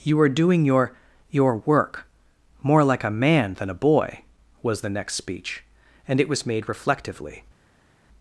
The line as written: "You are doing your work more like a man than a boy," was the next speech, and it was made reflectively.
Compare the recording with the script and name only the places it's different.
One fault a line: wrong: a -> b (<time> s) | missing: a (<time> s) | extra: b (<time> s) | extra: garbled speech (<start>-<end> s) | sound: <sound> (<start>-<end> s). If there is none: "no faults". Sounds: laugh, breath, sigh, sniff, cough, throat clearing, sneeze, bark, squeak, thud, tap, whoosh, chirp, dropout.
extra: your (1.3 s)